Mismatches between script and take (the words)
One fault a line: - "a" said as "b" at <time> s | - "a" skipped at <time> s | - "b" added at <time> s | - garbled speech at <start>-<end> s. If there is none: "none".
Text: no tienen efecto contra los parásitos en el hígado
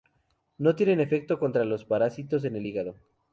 none